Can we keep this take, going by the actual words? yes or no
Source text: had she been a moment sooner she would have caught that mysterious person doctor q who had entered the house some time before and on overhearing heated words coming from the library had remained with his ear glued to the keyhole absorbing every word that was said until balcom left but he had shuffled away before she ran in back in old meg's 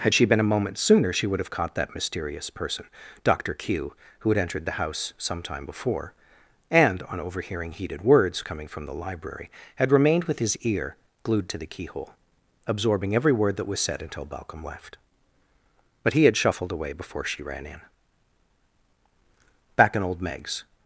yes